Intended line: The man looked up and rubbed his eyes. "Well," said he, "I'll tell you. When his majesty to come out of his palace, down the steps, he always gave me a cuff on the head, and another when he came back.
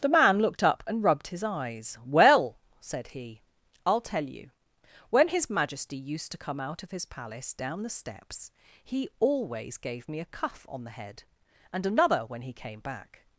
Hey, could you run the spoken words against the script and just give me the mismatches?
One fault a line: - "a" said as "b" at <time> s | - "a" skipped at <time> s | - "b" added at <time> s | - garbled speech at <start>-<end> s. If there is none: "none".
- "used" added at 6.0 s